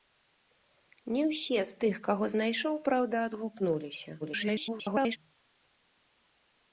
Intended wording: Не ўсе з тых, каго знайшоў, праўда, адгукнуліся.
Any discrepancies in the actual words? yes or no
yes